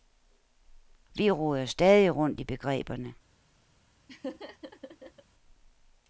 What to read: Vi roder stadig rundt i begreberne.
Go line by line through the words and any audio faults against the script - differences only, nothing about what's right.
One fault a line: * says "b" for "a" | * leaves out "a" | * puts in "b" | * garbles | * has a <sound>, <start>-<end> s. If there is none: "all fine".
* has a laugh, 4.1-5.2 s